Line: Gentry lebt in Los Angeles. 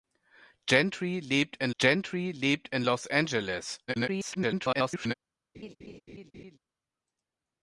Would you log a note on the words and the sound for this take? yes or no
yes